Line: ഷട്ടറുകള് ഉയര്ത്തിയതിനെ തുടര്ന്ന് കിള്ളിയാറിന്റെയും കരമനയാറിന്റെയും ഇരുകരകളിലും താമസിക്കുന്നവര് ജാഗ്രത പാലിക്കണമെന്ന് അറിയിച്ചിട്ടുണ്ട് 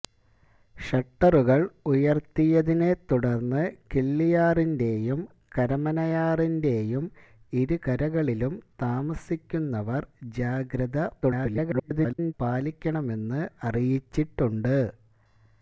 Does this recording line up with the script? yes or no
no